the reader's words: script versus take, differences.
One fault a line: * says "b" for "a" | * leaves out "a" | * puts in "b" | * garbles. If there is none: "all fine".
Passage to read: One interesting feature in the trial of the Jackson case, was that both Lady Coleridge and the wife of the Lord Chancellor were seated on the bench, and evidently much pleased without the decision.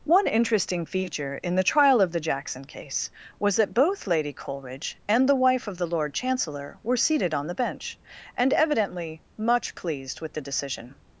* says "with" for "without"